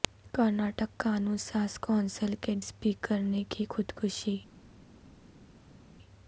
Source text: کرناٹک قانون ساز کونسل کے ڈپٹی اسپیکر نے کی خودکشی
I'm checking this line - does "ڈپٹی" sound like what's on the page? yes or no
no